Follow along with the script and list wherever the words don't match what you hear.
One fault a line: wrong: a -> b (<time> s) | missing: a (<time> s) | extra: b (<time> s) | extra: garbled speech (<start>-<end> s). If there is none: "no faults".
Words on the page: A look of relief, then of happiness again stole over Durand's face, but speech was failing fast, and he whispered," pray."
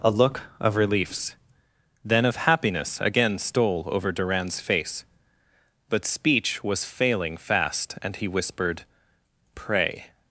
wrong: relief -> reliefs (0.8 s)